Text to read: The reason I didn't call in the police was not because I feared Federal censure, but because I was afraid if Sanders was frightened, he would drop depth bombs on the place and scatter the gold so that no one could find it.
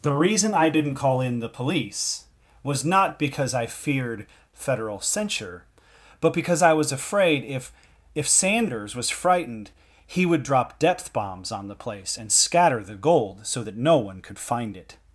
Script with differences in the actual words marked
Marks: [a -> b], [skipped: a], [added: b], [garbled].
The reason I didn't call in the police was not because I feared Federal censure, but because I was afraid if [added: if] Sanders was frightened, he would drop depth bombs on the place and scatter the gold so that no one could find it.